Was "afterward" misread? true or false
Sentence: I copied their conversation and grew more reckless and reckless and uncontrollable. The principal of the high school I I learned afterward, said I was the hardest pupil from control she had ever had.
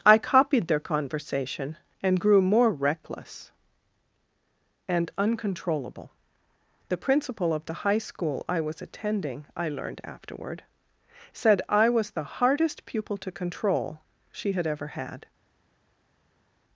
false